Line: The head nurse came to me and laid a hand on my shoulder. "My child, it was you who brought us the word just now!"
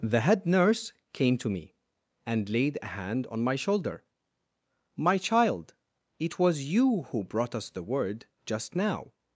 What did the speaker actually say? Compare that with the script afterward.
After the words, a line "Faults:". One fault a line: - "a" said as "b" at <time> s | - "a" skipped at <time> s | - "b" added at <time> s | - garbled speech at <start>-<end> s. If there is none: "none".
The head nurse came to me and laid a hand on my shoulder. "My child, it was you who brought us the word just now!"
Faults:
none